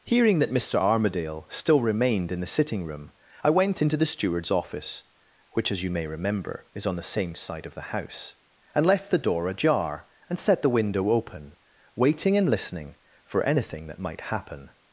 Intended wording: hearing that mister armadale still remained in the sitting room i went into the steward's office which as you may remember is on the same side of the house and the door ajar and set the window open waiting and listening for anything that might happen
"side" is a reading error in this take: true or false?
false